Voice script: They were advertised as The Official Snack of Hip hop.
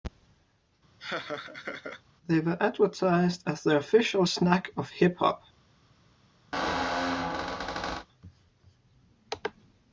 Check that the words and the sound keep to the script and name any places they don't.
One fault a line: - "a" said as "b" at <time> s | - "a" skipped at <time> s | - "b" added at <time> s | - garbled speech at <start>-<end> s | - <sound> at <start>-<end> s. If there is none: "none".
- laugh at 1.0-2.0 s
- squeak at 6.5-8.1 s